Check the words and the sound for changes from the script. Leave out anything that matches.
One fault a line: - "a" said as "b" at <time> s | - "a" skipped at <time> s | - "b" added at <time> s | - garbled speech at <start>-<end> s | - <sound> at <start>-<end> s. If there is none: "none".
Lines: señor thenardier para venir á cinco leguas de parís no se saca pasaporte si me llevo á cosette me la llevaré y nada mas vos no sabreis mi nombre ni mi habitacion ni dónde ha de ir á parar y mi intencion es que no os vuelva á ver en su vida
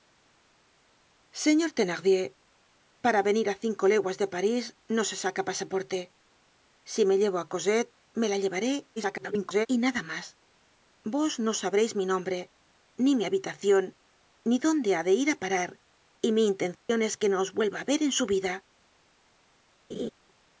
- garbled speech at 9.0-9.7 s
- dropout at 16.7-16.9 s
- laugh at 19.9-20.1 s